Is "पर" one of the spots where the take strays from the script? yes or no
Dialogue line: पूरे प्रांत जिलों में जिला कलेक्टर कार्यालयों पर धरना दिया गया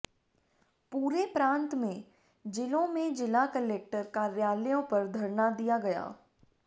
no